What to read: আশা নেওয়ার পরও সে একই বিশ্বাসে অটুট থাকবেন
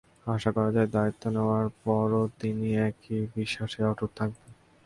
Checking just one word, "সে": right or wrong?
wrong